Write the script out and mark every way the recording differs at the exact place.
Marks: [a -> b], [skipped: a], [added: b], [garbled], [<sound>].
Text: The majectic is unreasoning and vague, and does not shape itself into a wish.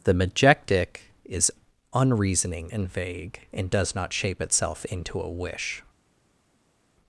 The majectic is unreasoning and vague, and does not shape itself into a wish.